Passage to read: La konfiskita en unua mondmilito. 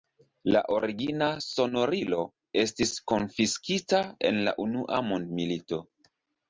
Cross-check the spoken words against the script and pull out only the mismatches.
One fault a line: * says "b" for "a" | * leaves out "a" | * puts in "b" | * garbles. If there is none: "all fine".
* puts in "origina sonorilo estis"
* puts in "la"